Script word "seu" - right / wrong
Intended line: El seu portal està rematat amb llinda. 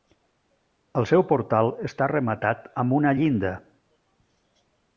right